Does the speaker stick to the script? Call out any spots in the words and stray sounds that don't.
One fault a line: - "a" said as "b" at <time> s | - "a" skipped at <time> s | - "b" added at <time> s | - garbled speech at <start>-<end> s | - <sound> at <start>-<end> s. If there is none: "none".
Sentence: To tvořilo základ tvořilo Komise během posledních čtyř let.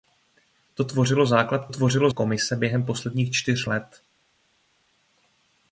none